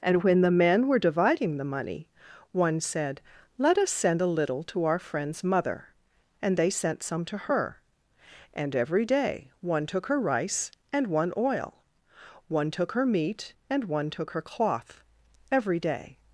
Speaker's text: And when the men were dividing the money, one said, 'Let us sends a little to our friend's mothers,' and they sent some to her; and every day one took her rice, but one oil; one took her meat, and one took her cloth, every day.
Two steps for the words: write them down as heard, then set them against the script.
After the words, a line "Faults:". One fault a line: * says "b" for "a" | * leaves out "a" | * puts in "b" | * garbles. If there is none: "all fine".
And when the men were dividing the money, one said, 'Let us send a little to our friend's mother,' and they sent some to her; and every day one took her rice, and one oil; one took her meat, and one took her cloth, every day.
Faults:
* says "send" for "sends"
* says "mother" for "mothers"
* says "and" for "but"